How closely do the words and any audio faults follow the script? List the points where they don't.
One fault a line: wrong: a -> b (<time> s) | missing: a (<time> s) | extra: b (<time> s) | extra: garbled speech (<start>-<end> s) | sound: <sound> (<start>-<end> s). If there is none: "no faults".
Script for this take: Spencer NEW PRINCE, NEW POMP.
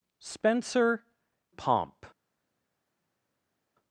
missing: NEW PRINCE NEW (1.1 s)